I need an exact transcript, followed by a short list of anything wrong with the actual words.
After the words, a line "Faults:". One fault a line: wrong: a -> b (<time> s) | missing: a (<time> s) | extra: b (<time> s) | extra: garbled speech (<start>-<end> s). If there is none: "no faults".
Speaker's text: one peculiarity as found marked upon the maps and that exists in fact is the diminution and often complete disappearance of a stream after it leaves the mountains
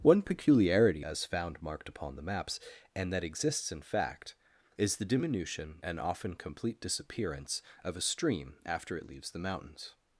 one peculiarity as found marked upon the maps and that exists in fact is the diminution and often complete disappearance of a stream after it leaves the mountains
Faults:
no faults